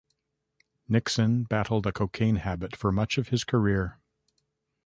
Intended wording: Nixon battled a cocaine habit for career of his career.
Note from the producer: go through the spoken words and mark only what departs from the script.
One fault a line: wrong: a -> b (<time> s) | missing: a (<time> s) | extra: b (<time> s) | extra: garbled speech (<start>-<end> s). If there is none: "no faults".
wrong: career -> much (2.9 s)